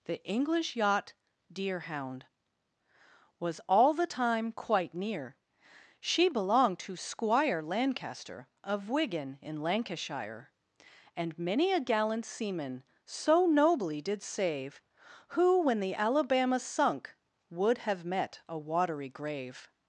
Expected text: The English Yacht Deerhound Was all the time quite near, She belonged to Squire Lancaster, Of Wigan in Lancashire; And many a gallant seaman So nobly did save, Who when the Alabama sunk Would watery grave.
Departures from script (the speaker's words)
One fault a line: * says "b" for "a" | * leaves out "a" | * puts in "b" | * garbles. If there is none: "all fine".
* puts in "have met a"